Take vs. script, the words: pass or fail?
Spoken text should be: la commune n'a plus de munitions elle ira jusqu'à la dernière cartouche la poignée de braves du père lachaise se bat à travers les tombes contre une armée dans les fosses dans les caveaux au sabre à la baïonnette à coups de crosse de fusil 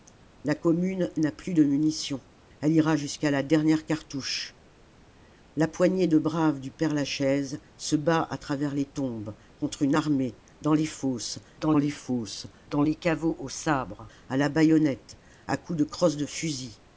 fail